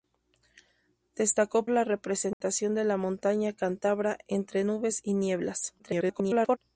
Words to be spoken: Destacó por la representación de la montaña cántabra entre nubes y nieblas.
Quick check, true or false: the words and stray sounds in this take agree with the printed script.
false